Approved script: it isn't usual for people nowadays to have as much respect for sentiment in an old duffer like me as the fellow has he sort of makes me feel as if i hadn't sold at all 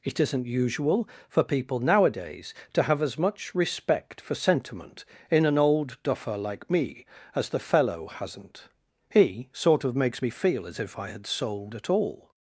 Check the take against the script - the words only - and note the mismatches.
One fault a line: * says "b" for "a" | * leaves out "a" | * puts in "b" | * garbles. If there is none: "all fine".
* says "hasn't" for "has"
* says "had" for "hadn't"